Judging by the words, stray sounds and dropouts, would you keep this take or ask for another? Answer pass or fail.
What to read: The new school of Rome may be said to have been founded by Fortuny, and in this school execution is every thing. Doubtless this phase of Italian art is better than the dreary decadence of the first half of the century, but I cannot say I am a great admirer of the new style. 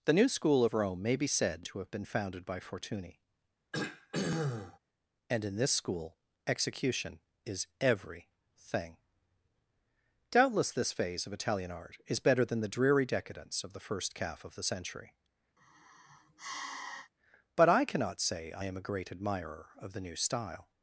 fail